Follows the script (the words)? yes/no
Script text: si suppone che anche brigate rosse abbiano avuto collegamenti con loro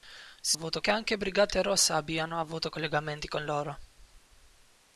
no